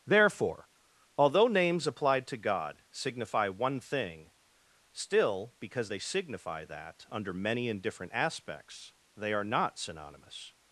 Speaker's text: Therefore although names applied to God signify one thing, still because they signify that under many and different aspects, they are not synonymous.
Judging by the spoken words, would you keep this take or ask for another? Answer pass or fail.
pass